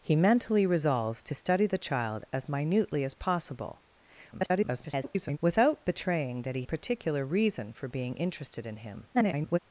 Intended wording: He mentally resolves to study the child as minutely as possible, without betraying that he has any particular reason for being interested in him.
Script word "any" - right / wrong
wrong